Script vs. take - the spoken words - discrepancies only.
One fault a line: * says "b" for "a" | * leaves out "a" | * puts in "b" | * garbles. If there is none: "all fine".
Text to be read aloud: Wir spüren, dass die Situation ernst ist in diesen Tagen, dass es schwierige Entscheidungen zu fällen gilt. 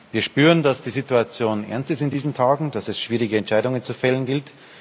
all fine